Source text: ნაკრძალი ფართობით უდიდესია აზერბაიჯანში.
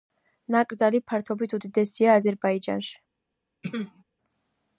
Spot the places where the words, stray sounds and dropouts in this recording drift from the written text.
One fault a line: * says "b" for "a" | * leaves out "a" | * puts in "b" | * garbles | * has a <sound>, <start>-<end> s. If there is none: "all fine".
* has a throat clearing, 3.6-4.0 s